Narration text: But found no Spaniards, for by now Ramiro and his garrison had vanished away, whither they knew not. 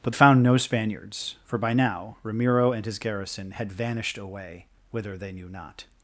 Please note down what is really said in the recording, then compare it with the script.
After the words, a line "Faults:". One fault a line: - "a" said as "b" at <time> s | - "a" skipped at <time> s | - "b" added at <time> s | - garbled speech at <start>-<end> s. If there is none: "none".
But found no Spaniards, for by now Ramiro and his garrison had vanished away, whither they knew not.
Faults:
none